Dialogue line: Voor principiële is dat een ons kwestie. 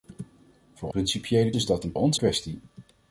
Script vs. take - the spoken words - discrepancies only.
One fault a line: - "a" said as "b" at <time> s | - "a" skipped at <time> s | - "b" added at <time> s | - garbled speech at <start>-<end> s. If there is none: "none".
none